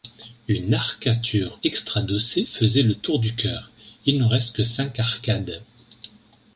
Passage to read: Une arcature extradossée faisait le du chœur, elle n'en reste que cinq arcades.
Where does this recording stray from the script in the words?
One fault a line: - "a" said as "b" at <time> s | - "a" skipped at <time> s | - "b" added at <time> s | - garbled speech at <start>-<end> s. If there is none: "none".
- "tour" added at 2.9 s
- "elle" said as "il" at 4.0 s